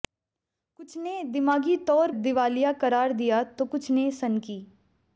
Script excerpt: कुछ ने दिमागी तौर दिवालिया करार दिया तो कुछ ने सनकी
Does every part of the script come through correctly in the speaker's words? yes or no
yes